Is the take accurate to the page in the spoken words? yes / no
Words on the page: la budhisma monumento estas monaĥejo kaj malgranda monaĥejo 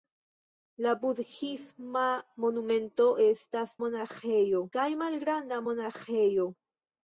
yes